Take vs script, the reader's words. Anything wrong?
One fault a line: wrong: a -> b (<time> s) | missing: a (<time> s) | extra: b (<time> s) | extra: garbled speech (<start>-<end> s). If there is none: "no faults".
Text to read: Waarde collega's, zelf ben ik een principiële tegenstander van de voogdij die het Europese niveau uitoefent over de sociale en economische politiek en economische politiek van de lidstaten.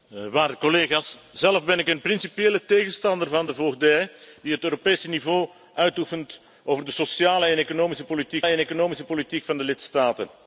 no faults